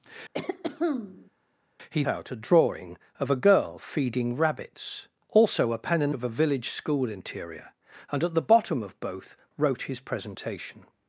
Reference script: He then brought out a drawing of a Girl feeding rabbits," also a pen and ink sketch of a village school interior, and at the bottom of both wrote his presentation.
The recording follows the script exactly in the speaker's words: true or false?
false